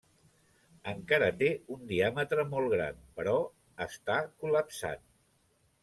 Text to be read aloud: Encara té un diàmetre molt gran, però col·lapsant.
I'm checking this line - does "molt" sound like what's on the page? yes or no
yes